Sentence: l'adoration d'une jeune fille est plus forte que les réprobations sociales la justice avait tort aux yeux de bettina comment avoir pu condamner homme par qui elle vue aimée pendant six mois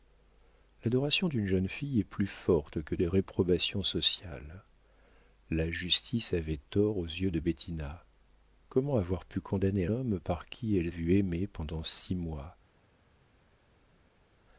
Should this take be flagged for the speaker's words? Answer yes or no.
no